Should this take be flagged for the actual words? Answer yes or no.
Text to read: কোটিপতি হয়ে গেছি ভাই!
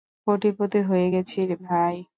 no